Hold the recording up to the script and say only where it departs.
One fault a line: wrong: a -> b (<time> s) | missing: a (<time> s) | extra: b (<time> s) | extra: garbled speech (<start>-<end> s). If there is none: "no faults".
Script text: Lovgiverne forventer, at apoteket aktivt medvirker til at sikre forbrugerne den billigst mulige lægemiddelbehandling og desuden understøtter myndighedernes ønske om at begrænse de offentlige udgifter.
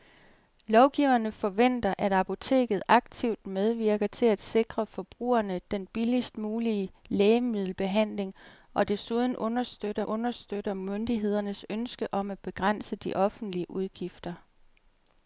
extra: understøtter (10.0 s)